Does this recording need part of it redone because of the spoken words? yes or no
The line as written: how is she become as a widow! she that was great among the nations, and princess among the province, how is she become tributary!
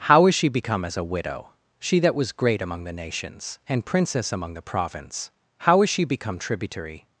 no